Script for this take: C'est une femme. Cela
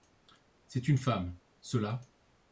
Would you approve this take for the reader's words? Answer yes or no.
yes